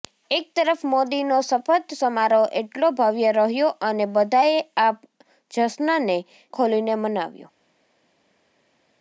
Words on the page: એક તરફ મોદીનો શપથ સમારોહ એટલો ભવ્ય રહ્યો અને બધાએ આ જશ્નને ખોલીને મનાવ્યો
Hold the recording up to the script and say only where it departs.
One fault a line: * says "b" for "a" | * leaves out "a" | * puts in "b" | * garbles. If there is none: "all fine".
all fine